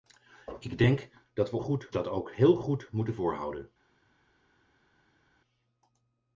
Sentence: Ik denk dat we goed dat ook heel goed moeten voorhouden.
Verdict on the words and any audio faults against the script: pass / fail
pass